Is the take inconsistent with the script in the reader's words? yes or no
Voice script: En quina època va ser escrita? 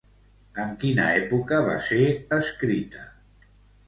no